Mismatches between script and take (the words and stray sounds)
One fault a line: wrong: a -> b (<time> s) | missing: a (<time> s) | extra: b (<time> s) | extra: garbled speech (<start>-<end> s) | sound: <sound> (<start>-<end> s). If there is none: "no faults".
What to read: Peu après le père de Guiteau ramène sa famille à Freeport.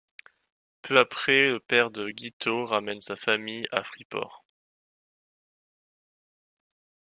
no faults